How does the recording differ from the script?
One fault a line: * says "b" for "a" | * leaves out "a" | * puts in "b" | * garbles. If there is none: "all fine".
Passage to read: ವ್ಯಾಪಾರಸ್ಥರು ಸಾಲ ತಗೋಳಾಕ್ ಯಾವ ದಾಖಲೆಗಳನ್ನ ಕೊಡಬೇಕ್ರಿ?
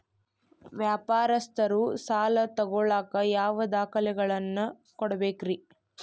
all fine